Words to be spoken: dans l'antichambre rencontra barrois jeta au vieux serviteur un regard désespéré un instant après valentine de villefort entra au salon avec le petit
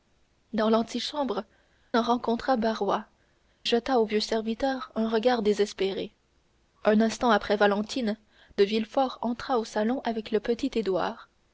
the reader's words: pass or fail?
pass